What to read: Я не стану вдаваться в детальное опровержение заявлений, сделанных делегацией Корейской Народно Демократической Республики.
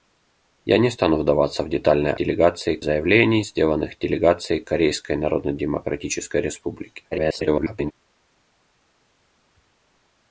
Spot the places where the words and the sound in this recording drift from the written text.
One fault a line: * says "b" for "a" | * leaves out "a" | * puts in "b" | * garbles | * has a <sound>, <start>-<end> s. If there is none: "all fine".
* says "делегацией" for "опровержение"
* garbles